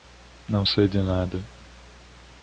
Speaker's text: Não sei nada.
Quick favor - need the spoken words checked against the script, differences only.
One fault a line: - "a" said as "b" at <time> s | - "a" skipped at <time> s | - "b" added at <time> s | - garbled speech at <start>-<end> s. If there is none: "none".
- "de" added at 0.9 s